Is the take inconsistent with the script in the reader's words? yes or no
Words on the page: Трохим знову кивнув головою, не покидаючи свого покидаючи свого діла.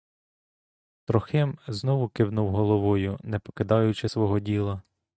yes